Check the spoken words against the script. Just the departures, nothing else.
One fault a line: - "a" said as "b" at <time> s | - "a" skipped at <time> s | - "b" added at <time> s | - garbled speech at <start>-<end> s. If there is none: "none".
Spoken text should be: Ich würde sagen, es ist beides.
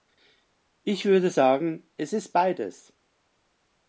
none